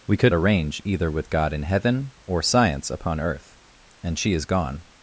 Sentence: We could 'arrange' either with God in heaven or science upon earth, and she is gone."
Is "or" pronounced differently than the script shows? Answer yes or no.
no